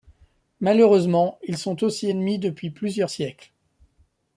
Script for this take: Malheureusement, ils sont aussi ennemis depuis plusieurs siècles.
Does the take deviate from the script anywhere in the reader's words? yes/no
no